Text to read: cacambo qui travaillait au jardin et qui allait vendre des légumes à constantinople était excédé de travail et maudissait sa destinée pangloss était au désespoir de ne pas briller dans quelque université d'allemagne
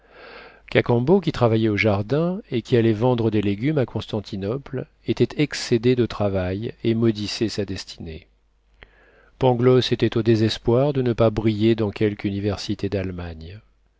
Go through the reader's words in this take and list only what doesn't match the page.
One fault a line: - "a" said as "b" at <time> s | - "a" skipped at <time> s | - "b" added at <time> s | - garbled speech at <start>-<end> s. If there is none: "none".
none